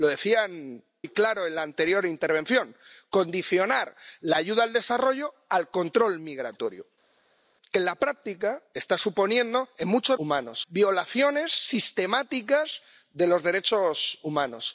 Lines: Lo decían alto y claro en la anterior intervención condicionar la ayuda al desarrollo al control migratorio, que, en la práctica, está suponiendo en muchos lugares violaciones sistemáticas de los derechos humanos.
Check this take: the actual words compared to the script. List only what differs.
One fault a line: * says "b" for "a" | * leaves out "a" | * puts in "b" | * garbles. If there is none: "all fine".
* leaves out "alto"
* says "humanos" for "lugares"